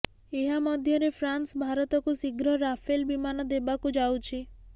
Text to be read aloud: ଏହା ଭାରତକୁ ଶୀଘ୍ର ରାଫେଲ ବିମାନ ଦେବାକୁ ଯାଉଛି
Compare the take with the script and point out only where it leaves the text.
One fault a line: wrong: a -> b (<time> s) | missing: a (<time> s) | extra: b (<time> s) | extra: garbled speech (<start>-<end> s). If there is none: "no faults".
extra: ମଧ୍ୟରେ ଫ୍ରାନ୍ସ (0.6 s)